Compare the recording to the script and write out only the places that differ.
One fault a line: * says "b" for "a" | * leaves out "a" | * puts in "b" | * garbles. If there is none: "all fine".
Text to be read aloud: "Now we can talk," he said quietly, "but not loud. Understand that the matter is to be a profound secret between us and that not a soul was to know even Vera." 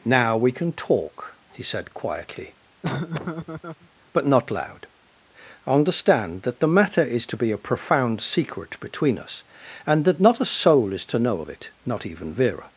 * says "is" for "was"
* puts in "of it not"